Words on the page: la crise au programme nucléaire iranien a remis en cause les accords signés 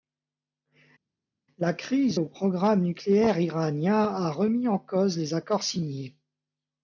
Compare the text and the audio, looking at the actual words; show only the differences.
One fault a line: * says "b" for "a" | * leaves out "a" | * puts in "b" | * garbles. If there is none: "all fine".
all fine